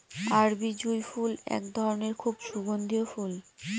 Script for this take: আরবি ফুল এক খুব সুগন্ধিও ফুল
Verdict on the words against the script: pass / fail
fail